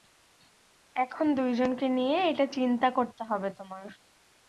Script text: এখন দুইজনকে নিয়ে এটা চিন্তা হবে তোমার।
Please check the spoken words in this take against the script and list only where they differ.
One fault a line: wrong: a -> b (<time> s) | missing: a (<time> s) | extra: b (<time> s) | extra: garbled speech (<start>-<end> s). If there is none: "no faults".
extra: করতে (3.0 s)